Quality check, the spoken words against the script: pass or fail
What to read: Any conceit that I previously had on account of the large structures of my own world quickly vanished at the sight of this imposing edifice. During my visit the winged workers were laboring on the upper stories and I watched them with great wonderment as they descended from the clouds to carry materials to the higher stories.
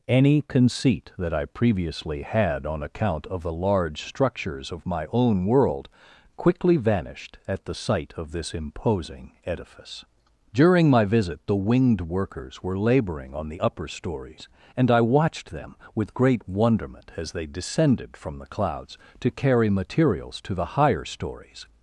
pass